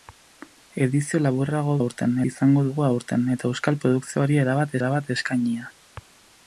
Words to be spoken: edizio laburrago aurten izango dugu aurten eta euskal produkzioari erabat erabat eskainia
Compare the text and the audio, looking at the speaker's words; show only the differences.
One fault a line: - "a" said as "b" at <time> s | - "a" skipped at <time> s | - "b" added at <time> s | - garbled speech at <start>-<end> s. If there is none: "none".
none